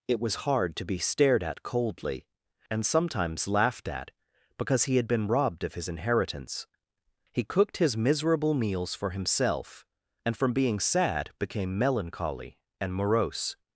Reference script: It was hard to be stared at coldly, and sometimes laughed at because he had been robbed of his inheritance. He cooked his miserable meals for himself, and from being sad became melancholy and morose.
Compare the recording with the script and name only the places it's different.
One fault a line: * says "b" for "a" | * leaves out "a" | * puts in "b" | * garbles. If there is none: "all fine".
all fine